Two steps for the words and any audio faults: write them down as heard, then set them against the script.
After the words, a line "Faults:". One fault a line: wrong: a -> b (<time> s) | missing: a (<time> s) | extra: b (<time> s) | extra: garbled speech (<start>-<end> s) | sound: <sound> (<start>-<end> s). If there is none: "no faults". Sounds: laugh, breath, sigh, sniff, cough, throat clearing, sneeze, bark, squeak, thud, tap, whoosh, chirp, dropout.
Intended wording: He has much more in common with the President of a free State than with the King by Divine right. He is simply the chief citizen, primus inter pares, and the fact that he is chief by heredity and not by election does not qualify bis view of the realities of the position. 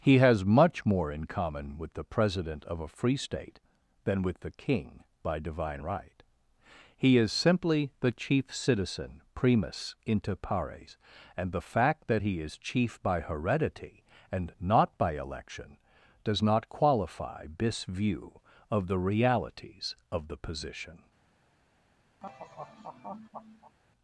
He has much more in common with the President of a free State than with the King by Divine right. He is simply the chief citizen, primus inter pares, and the fact that he is chief by heredity and not by election does not qualify this view of the realities of the position.
Faults:
wrong: bis -> this (17.6 s)
sound: laugh (22.2-23.8 s)